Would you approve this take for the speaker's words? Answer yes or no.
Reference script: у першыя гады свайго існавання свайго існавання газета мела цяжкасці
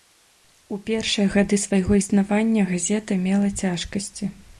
no